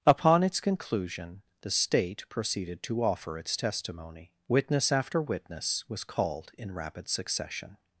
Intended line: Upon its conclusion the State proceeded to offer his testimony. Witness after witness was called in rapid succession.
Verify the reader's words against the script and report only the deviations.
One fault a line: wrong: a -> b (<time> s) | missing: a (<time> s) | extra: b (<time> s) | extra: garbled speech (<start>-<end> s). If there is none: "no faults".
wrong: his -> its (3.4 s)